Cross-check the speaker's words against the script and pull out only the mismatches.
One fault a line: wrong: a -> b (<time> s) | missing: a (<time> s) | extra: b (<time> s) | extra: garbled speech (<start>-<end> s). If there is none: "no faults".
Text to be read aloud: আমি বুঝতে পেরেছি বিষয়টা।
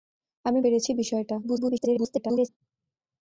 missing: বুঝতে (0.6 s)
extra: garbled speech (1.4-2.5 s)